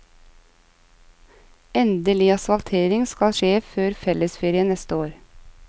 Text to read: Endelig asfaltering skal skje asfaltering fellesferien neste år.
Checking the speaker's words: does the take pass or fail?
fail